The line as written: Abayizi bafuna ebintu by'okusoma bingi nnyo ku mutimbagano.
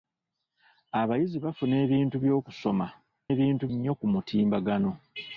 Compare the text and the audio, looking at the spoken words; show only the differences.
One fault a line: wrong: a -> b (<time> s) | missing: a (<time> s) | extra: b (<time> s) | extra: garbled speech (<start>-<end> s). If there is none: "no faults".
wrong: bingi -> ebintu (3.3 s)